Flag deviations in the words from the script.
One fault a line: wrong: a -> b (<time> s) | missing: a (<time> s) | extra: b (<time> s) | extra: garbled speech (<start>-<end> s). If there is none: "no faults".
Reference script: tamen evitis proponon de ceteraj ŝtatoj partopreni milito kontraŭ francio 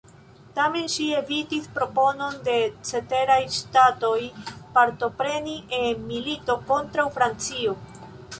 extra: ŝi (0.9 s)
extra: en (5.8 s)